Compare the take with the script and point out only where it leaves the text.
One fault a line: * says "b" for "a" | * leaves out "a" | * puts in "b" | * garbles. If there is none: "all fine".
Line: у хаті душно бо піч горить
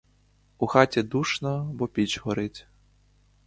all fine